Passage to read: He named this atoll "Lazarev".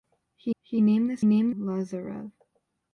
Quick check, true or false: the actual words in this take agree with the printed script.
false